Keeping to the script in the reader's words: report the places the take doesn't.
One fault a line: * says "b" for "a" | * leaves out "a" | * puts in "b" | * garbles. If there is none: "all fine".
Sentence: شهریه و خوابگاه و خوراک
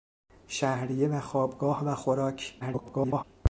* garbles